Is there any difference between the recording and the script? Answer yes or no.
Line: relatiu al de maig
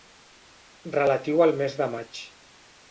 yes